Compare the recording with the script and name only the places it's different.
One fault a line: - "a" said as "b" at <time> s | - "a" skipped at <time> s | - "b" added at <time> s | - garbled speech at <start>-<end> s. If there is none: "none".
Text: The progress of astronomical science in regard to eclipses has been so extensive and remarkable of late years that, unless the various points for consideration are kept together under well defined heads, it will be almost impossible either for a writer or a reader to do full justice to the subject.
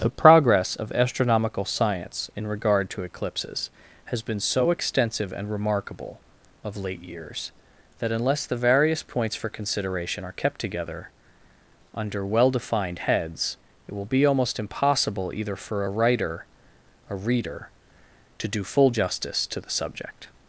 - "or" skipped at 16.4 s